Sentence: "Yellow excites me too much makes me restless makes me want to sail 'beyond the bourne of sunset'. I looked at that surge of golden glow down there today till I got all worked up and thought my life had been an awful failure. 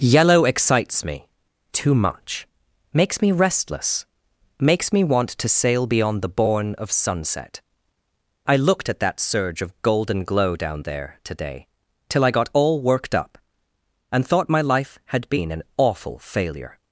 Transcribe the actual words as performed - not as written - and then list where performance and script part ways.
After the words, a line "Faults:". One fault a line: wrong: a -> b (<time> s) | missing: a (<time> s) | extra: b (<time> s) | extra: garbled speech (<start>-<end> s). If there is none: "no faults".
"Yellow excites me too much makes me restless makes me want to sail 'beyond the bourne of sunset'. I looked at that surge of golden glow down there today till I got all worked up and thought my life had been an awful failure.
Faults:
no faults